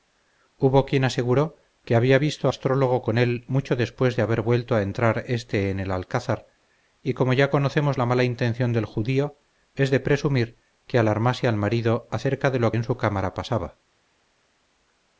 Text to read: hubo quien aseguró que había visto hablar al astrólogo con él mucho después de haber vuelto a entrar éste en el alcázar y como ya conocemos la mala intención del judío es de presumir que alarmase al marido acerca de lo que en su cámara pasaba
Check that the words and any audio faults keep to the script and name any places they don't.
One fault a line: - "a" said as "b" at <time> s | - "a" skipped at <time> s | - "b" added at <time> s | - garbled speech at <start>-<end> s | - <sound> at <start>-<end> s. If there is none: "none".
- "hablar al" skipped at 2.5 s
- "que" skipped at 12.7 s